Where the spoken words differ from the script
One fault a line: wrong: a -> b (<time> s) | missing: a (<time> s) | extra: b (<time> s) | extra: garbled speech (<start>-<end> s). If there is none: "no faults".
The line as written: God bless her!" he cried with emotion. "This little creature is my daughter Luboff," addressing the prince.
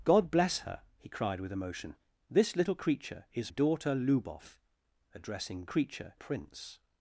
missing: my (3.5 s)
wrong: the -> creature (5.6 s)